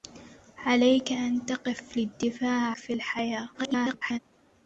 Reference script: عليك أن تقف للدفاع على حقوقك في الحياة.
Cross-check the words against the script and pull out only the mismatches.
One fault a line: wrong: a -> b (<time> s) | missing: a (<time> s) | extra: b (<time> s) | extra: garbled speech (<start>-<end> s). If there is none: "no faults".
missing: على حقوقك (2.7 s)
extra: garbled speech (3.5-4.2 s)